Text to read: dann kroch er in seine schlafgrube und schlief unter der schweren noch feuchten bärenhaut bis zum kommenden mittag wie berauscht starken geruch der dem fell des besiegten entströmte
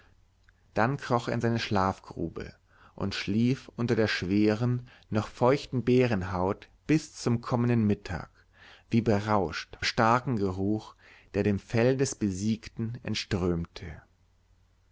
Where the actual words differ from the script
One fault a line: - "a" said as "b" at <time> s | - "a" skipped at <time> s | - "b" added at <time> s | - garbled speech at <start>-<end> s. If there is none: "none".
none